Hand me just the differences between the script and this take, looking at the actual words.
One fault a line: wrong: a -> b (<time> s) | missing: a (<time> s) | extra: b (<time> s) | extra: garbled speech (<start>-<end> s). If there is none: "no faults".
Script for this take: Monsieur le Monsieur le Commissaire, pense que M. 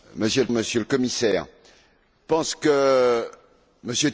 no faults